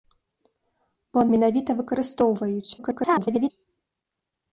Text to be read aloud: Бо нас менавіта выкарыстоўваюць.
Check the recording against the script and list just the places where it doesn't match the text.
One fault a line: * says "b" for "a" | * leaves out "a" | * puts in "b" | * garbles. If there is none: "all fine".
* leaves out "нас"
* garbles